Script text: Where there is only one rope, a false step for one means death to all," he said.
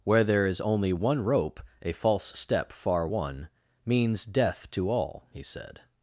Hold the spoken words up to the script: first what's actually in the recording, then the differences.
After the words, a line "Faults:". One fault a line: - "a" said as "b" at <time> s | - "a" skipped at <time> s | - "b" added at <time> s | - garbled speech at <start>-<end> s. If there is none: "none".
Where there is only one rope, a false step far one means death to all," he said.
Faults:
- "for" said as "far" at 2.7 s